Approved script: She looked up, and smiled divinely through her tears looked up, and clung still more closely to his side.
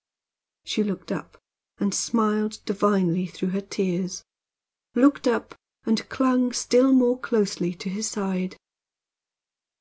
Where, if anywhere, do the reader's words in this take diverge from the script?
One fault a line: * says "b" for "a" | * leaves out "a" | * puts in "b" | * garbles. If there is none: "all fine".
all fine